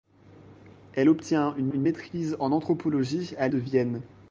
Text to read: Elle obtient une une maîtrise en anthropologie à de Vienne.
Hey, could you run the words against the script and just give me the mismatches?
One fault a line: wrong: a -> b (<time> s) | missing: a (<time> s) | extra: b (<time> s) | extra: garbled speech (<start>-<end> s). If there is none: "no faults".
no faults